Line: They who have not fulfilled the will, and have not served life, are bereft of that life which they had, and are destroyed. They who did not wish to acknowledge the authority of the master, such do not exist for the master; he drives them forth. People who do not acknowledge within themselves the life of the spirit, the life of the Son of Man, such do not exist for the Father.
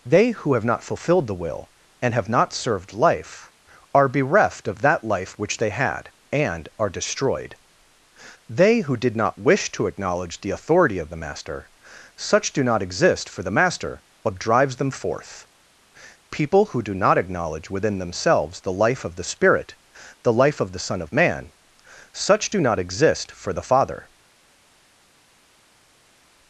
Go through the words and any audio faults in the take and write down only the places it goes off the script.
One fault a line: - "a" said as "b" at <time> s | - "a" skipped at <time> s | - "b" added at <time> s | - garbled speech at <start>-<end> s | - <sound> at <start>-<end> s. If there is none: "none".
- "he" said as "but" at 14.2 s